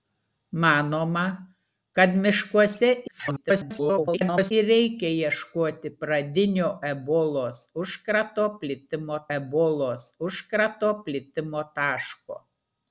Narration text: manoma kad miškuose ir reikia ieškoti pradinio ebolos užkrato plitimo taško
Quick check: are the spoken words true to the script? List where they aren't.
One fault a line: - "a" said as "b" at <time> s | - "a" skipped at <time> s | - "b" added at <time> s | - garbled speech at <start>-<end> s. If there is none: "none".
- garbled speech at 3.1-4.5 s
- "ebolos užkrato plitimo" added at 9.4 s